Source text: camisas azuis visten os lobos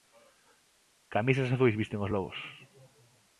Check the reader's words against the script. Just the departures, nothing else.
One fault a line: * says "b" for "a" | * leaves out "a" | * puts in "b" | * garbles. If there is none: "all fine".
all fine